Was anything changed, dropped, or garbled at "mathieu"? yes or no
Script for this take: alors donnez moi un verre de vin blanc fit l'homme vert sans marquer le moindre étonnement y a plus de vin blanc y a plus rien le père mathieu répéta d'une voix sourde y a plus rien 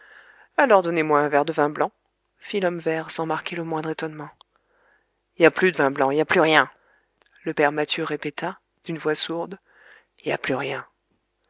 no